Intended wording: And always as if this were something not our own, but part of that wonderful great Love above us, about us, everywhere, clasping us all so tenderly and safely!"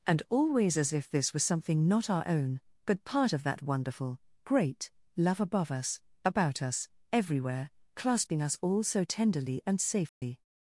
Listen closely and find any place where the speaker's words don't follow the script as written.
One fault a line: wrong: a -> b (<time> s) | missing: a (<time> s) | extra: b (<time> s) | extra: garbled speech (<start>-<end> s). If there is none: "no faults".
wrong: were -> was (1.3 s)